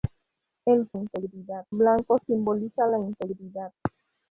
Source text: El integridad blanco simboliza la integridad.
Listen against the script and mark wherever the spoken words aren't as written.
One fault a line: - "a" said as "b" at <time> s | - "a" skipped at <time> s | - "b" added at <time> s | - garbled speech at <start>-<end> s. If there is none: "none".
none